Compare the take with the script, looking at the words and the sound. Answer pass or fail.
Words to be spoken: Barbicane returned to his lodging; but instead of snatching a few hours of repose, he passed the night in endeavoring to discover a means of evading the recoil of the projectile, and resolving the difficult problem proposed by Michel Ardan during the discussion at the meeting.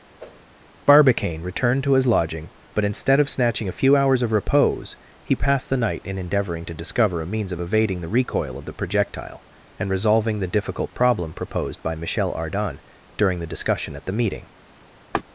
fail